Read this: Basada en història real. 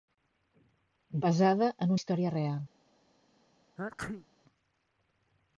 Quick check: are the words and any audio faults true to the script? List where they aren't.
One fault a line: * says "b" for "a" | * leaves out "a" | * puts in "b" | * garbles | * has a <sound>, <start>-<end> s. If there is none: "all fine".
* has a sneeze, 3.8-4.3 s